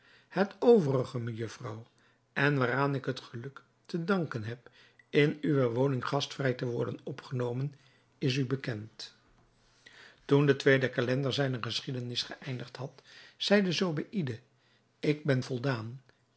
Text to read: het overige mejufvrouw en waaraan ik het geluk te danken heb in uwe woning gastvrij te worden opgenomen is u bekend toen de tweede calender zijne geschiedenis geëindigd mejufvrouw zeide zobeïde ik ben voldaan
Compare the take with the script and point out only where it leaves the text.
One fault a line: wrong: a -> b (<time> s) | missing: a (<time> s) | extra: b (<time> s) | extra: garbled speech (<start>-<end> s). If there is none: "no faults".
wrong: mejufvrouw -> had (12.8 s)